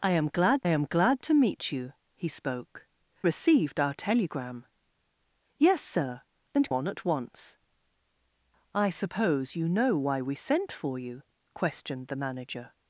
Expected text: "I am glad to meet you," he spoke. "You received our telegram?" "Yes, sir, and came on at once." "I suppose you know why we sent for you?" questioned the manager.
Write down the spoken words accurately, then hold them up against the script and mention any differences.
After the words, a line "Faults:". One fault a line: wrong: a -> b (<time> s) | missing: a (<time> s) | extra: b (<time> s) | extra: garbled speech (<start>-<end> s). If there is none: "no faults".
"I am glad am glad to meet you," he spoke. "Received our telegram?" "Yes, sir, and on at once." "I suppose you know why we sent for you?" questioned the manager.
Faults:
extra: am glad (0.7 s)
missing: You (2.9 s)
missing: came (6.7 s)